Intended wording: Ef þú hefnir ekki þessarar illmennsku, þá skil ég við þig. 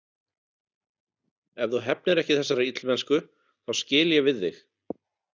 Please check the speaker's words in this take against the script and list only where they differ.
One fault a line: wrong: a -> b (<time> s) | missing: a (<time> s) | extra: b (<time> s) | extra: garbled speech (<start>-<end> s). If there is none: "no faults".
no faults